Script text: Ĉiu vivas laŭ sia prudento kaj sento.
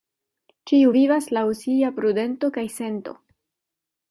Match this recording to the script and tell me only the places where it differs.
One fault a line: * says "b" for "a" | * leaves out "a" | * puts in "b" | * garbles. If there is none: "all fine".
all fine